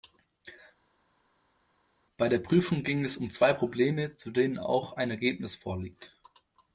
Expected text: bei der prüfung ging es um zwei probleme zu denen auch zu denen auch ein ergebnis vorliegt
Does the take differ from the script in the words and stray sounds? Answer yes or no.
yes